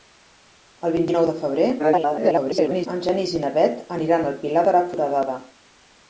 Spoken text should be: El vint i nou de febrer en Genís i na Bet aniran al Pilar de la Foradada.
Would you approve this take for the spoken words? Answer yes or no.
no